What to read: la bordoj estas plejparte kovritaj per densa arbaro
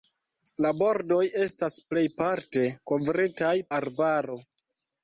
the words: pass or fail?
fail